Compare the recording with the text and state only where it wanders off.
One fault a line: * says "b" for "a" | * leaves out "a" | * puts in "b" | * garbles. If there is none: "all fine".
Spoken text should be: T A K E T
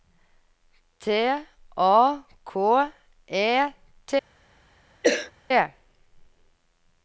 all fine